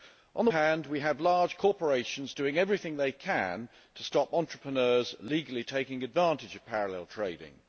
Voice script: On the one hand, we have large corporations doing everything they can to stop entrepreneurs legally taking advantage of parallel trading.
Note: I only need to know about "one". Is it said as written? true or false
false